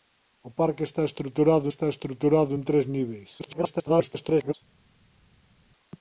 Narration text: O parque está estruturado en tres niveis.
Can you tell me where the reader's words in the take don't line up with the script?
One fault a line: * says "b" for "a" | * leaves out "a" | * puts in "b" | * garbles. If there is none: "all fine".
* puts in "está estruturado"
* garbles